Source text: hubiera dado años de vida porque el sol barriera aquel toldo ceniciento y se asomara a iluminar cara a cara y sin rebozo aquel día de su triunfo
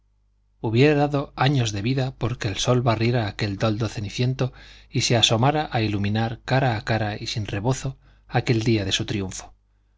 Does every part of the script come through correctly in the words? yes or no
yes